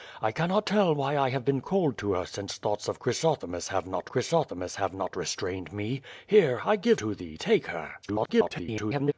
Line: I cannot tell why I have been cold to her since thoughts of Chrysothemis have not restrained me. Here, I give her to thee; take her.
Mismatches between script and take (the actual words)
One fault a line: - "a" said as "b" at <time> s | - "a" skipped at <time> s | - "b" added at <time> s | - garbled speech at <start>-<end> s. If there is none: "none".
- "Chrysothemis have not" added at 4.1 s
- "her" skipped at 7.0 s
- garbled speech at 8.0-9.1 s